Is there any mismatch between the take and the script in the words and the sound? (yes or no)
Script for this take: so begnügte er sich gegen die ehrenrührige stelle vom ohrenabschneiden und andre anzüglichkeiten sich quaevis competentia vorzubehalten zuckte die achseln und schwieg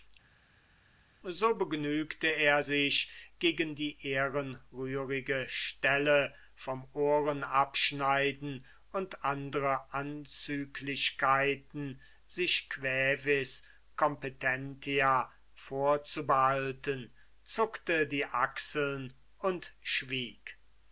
no